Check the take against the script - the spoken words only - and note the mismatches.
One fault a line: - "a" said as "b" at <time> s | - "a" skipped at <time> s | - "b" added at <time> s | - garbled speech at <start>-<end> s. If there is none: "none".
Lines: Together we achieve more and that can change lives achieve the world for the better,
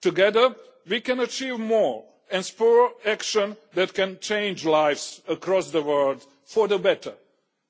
- "can" added at 1.0 s
- "spur action" added at 2.4 s
- "achieve" said as "across" at 5.3 s